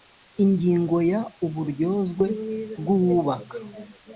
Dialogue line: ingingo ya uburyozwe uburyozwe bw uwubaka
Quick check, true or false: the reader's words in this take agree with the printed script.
false